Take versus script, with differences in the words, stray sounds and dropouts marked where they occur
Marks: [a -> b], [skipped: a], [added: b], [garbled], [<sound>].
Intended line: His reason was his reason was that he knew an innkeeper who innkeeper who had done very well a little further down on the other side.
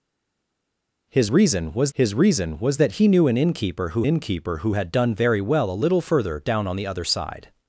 His reason was his reason was that he knew an innkeeper who innkeeper who had done very well a little further down on the other side.